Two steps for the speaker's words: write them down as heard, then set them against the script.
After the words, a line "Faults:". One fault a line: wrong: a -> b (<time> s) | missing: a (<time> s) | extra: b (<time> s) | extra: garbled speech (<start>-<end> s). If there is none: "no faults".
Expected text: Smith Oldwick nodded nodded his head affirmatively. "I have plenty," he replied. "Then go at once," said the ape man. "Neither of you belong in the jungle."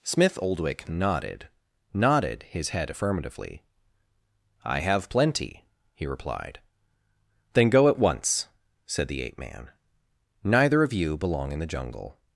Smith Oldwick nodded nodded his head affirmatively. "I have plenty," he replied. "Then go at once," said the ape man. "Neither of you belong in the jungle."
Faults:
no faults